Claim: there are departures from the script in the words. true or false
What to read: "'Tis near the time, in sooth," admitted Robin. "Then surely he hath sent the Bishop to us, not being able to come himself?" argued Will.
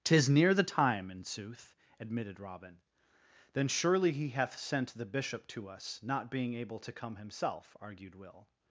false